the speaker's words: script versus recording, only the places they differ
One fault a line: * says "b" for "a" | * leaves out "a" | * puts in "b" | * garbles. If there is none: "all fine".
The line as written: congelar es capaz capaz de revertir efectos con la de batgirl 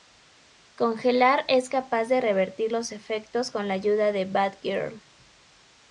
* leaves out "capaz"
* puts in "los"
* puts in "ayuda"